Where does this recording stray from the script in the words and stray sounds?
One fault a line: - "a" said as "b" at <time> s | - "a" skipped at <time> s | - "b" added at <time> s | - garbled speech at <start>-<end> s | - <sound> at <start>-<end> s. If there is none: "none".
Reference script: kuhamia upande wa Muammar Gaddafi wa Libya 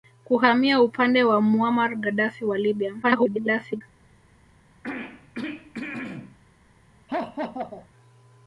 - garbled speech at 3.0-3.8 s
- throat clearing at 4.8-6.4 s
- laugh at 7.1-7.9 s